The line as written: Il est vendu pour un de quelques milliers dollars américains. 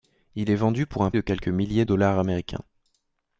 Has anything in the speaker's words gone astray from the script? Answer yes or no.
no